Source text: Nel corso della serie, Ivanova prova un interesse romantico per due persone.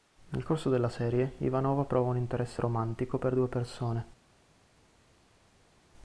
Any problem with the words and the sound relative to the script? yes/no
no